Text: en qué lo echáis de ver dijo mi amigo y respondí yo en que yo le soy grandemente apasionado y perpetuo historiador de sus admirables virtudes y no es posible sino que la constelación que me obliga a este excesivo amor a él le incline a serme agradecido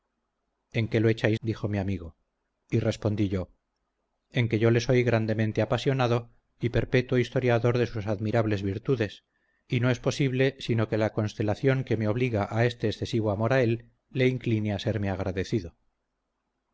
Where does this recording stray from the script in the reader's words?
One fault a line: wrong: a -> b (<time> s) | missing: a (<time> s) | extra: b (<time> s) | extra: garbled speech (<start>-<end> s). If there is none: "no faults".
missing: de ver (1.4 s)